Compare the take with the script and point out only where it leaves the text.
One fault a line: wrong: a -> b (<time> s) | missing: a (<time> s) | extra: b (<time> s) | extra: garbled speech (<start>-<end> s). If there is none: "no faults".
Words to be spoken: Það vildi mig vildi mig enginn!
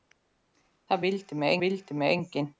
no faults